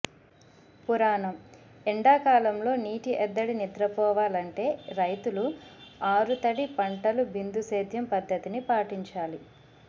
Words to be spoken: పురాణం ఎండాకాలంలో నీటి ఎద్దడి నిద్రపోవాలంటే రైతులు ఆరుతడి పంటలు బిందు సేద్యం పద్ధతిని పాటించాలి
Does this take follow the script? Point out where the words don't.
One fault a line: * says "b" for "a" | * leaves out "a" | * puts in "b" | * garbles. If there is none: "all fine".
all fine